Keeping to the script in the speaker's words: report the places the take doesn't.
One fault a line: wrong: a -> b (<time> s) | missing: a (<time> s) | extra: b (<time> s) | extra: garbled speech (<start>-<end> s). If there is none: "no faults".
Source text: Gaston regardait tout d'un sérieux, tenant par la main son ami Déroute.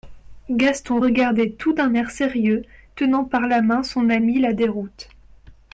extra: air (1.9 s)
extra: la (4.4 s)